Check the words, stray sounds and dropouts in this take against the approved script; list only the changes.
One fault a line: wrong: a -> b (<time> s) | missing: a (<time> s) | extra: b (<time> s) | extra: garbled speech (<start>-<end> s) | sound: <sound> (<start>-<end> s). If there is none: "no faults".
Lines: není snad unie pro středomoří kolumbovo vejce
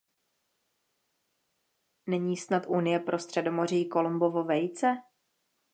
no faults